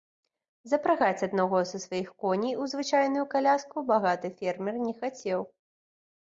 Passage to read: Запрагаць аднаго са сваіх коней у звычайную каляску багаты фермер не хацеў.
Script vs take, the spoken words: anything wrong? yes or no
no